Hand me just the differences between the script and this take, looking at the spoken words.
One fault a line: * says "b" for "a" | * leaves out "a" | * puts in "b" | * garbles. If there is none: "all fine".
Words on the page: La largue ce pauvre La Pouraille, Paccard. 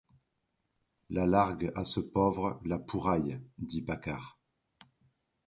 * puts in "à"
* puts in "dit"